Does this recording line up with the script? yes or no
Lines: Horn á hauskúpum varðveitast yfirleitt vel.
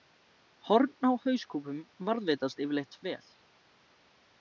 yes